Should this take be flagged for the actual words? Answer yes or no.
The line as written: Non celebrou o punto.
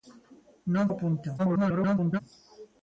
yes